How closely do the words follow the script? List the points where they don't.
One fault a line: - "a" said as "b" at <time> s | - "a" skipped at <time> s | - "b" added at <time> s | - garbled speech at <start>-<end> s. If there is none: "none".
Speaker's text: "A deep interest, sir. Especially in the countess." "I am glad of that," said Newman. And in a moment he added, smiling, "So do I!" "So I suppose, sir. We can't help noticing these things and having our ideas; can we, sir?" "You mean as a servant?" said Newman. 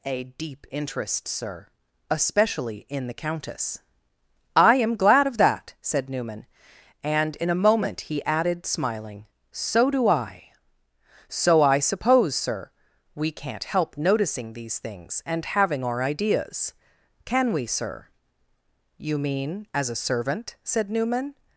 none